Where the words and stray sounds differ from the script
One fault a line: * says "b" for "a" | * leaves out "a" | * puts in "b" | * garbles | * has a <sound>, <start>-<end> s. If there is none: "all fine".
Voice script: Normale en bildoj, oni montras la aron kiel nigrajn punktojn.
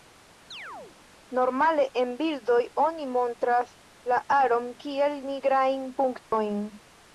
* has a chirp, 0.5-1.0 s
* has a dropout, 6.2-6.3 s